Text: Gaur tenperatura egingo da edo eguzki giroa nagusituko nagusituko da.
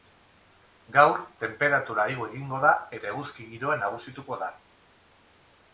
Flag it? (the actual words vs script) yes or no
yes